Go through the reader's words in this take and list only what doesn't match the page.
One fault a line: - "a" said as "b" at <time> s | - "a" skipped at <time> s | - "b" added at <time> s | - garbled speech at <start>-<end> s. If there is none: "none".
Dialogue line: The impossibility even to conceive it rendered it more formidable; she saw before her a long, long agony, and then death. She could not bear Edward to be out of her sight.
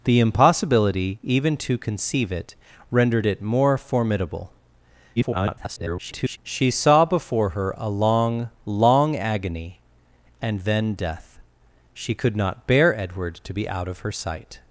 - garbled speech at 5.2-6.4 s